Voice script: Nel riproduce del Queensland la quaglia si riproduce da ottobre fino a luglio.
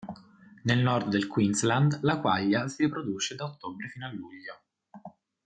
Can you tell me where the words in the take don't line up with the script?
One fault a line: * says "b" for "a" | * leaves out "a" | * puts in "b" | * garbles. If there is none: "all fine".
* says "nord" for "riproduce"